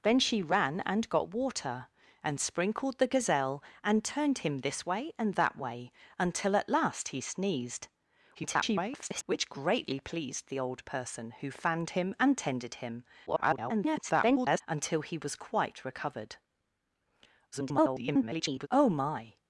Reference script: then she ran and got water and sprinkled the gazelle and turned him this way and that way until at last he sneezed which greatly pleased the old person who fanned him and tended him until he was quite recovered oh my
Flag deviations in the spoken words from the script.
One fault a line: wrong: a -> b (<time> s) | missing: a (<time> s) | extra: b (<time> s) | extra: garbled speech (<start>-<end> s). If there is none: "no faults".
extra: garbled speech (8.3-9.2 s)
extra: garbled speech (13.3-14.6 s)
extra: garbled speech (17.5-18.7 s)